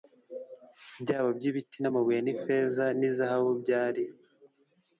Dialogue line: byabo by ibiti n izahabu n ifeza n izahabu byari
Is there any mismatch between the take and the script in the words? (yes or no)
yes